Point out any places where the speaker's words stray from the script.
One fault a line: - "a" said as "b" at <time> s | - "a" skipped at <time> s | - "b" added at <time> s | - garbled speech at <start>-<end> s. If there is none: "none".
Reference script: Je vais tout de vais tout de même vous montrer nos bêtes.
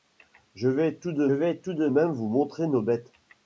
none